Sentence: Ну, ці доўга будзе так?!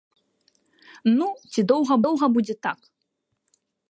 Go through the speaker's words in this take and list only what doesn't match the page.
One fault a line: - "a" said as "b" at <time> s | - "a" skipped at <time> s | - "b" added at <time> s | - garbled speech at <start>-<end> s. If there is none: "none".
- "доўга" added at 2.1 s